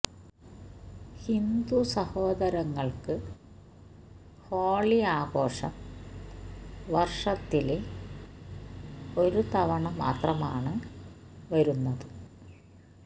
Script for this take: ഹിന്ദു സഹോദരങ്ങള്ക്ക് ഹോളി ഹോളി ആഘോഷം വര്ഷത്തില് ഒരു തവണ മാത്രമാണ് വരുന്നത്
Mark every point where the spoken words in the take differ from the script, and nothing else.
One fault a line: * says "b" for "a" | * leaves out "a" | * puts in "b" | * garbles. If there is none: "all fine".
* leaves out "ഹോളി"